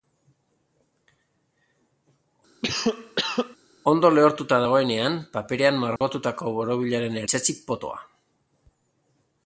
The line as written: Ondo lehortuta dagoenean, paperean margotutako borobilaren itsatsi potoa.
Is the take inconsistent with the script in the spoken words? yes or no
no